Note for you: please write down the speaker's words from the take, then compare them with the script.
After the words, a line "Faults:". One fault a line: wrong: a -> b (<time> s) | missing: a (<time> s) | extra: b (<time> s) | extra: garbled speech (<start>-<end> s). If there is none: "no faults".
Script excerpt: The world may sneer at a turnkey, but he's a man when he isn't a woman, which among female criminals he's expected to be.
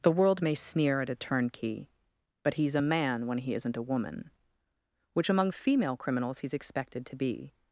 The world may sneer at a turnkey, but he's a man when he isn't a woman, which among female criminals he's expected to be.
Faults:
no faults